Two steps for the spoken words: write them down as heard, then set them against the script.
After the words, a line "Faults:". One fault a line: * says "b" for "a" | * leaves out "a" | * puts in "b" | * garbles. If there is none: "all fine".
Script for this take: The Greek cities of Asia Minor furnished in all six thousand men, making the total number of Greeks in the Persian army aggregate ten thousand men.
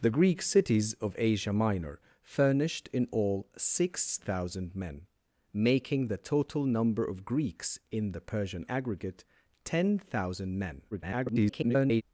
The Greek cities of Asia Minor furnished in all six thousand men, making the total number of Greeks in the Persian aggregate ten thousand men. [garbled]
Faults:
* leaves out "army"
* garbles